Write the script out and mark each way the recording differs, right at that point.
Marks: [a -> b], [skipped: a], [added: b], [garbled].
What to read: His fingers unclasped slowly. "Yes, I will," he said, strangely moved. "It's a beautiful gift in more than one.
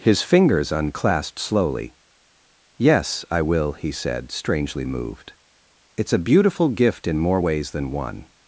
His fingers unclasped slowly. "Yes, I will," he said, strangely moved. "It's a beautiful gift in more [added: ways] than one.